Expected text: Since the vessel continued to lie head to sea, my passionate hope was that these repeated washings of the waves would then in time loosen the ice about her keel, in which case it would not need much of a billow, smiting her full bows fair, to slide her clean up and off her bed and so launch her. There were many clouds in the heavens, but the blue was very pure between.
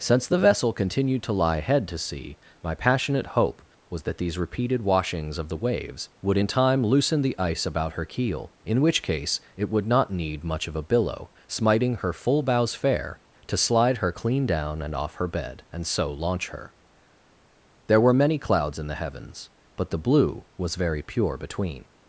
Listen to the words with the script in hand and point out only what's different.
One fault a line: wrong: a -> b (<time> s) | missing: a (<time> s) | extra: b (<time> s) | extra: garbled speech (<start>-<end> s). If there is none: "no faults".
missing: then (6.4 s)
wrong: up -> down (14.5 s)